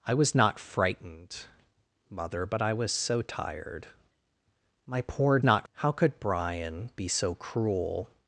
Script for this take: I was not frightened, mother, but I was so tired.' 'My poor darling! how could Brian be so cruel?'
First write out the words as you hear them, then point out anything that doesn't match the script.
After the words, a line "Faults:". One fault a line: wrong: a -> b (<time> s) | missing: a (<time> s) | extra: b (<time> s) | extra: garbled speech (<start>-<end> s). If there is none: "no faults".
I was not frightened, mother, but I was so tired.' 'My poor not! how could Brian be so cruel?'
Faults:
wrong: darling -> not (5.4 s)